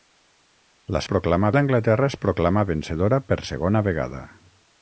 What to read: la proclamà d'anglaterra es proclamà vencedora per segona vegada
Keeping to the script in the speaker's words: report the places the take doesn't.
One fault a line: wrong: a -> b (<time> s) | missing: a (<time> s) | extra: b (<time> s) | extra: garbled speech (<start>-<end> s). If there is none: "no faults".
no faults